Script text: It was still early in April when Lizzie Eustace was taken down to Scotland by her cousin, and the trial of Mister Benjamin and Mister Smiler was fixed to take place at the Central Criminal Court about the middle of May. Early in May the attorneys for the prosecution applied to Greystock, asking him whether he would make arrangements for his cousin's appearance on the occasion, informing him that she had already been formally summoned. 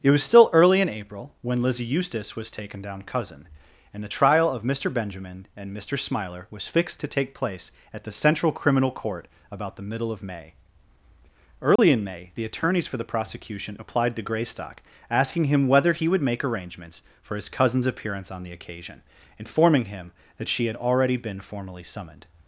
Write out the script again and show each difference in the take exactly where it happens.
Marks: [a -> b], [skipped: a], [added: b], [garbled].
It was still early in April when Lizzie Eustace was taken down [skipped: to Scotland by her] cousin, and the trial of Mister Benjamin and Mister Smiler was fixed to take place at the Central Criminal Court about the middle of May. Early in May the attorneys for the prosecution applied to Greystock, asking him whether he would make arrangements for his cousin's appearance on the occasion, informing him that she had already been formally summoned.